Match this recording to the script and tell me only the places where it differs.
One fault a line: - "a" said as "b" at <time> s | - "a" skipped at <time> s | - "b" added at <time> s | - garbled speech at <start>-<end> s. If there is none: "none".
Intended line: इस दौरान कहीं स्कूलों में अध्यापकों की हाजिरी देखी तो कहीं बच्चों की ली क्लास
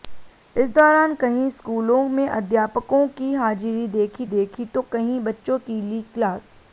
- "देखी" added at 4.3 s